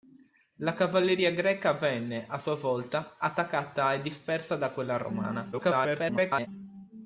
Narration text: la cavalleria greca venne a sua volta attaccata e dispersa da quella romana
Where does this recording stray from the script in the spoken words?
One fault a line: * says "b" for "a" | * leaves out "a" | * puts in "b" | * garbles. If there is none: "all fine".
* garbles